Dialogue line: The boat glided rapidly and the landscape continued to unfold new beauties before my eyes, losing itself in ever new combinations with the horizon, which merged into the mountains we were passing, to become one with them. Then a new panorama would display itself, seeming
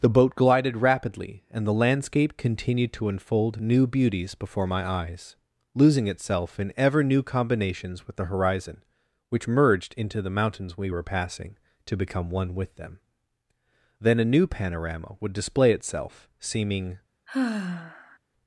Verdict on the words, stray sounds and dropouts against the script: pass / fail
fail